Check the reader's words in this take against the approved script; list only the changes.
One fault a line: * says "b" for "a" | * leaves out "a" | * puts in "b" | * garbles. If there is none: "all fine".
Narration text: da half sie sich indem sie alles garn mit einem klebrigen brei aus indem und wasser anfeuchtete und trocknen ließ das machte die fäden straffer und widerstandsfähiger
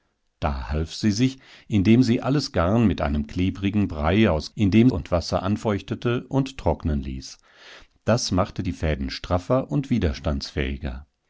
all fine